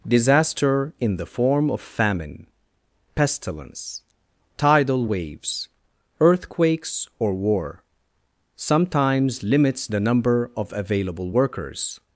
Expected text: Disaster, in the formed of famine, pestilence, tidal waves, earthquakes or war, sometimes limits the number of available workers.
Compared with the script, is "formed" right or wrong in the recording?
wrong